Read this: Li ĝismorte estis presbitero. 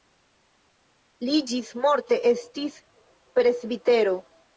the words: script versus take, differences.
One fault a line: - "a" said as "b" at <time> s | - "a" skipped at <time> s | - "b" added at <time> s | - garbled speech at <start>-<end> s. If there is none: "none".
none